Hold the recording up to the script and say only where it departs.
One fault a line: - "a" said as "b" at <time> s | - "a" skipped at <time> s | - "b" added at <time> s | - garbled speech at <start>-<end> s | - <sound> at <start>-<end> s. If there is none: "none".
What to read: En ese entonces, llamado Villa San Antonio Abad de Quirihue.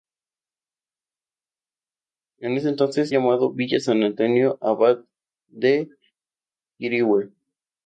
none